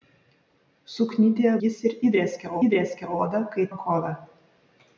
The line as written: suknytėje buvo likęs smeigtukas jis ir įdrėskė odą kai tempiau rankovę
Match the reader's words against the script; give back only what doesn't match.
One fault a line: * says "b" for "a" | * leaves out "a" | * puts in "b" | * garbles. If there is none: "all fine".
* leaves out "buvo likęs smeigtukas"
* puts in "įdrėskė"
* leaves out "tempiau"